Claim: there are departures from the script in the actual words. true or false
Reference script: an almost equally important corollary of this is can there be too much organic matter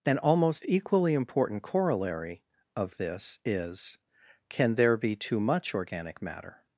false